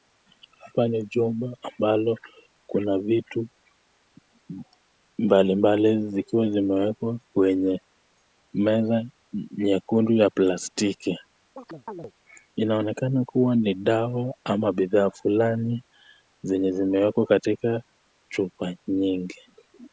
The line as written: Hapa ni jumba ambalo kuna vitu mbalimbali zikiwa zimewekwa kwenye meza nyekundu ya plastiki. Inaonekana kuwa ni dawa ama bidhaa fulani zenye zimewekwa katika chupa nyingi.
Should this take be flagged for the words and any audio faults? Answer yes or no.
yes